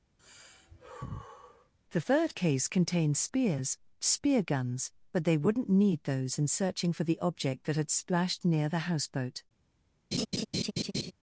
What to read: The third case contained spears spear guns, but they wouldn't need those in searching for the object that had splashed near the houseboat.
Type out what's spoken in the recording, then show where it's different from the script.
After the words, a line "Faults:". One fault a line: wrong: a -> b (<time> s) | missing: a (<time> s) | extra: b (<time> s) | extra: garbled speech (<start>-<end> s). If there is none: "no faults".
The third case contained spears spear guns, but they wouldn't need those in searching for the object that had splashed near the houseboat.
Faults:
no faults